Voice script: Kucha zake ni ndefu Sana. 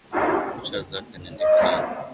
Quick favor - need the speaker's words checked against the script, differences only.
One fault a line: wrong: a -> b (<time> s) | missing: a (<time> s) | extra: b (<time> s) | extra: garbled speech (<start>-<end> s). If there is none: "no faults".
no faults